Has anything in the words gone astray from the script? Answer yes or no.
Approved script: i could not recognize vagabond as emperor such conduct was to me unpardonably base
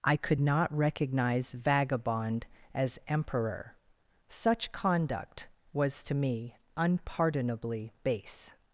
no